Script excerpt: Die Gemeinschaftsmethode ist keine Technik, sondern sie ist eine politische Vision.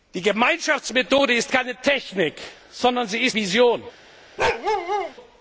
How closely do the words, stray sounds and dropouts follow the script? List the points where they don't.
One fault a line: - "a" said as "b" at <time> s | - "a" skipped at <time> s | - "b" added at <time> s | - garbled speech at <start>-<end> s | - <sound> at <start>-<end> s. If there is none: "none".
- "eine politische" skipped at 3.4 s
- bark at 4.4-5.1 s